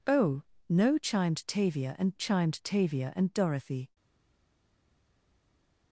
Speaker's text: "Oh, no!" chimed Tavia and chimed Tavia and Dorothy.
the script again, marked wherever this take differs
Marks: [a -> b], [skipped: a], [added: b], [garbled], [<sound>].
"Oh, no!" chimed Tavia and chimed Tavia and Dorothy.